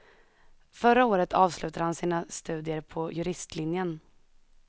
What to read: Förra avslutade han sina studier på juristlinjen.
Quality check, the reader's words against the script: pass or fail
fail